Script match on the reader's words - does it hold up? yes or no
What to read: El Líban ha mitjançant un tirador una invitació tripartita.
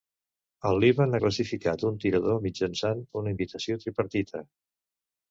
no